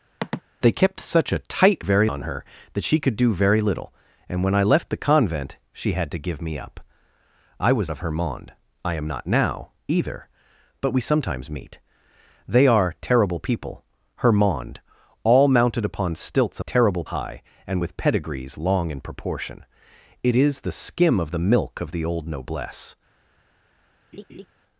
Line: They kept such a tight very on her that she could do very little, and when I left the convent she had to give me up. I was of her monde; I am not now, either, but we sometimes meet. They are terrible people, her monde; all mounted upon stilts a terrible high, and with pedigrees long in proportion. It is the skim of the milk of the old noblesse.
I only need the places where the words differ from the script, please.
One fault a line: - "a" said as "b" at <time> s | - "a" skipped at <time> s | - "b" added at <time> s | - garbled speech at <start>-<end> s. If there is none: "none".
none